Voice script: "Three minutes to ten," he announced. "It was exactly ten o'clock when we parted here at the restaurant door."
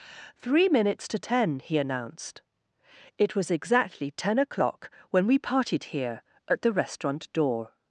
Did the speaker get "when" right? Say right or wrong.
right